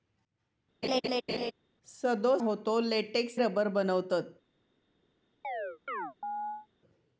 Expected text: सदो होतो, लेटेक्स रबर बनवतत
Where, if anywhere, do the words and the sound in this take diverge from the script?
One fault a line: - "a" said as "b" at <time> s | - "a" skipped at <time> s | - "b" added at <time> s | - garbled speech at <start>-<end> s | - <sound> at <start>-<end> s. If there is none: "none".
- laugh at 0.8-1.5 s
- chirp at 5.4-6.7 s